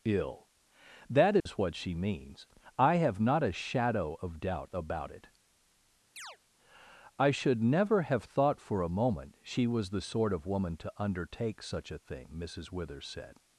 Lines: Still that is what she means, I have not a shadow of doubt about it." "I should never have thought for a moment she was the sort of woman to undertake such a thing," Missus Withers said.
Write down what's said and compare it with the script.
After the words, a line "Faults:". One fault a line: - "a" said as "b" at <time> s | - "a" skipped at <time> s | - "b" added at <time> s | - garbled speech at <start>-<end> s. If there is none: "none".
Ill that is what she means, I have not a shadow of doubt about it." "I should never have thought for a moment she was the sort of woman to undertake such a thing," Missus Withers said.
Faults:
- "Still" said as "Ill" at 0.0 s